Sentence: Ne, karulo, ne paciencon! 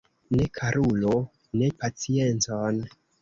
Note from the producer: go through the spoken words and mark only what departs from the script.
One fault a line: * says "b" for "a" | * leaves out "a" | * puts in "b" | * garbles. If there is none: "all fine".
all fine